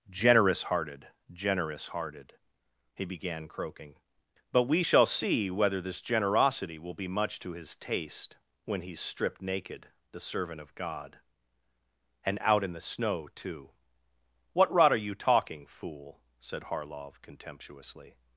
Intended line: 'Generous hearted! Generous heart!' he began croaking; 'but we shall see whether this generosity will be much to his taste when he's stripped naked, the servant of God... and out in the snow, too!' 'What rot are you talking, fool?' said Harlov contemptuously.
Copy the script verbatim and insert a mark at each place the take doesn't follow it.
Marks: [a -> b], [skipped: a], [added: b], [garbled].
'Generous hearted! Generous [heart!' -> hearted] he began croaking; 'but we shall see whether this generosity will be much to his taste when he's stripped naked, the servant of God... and out in the snow, too!' 'What rot are you talking, fool?' said Harlov contemptuously.